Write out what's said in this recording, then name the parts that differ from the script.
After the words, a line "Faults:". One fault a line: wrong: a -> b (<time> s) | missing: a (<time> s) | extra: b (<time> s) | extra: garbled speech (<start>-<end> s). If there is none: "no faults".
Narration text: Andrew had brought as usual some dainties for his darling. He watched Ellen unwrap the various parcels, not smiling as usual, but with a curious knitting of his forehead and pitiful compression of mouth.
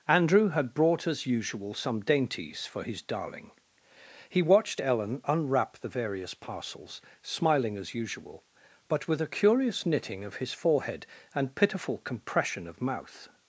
Andrew had brought as usual some dainties for his darling. He watched Ellen unwrap the various parcels, smiling as usual, but with a curious knitting of his forehead and pitiful compression of mouth.
Faults:
missing: not (7.0 s)